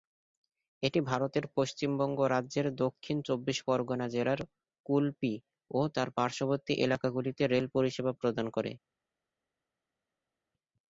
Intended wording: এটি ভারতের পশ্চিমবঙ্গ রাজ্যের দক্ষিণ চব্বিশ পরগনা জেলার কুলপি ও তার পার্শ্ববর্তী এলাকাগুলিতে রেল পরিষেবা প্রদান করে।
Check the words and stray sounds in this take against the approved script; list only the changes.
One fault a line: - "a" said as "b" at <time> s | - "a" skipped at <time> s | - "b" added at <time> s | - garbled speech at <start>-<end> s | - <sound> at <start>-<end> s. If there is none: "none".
none